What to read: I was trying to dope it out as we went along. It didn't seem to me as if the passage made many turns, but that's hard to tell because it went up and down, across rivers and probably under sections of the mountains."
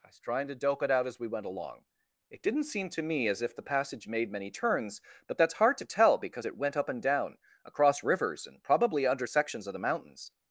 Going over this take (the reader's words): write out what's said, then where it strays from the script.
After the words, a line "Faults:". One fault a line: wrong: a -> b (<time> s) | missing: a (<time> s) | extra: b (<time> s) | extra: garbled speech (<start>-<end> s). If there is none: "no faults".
I was trying to dope it out as we went along. It didn't seem to me as if the passage made many turns, but that's hard to tell because it went up and down, across rivers and probably under sections of the mountains."
Faults:
no faults